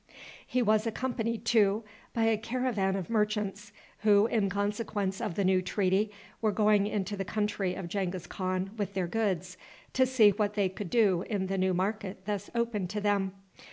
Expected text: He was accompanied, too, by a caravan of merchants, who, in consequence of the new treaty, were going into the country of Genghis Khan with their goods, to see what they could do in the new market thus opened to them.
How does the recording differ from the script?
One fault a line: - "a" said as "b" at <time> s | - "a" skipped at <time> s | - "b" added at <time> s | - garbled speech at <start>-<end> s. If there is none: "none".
none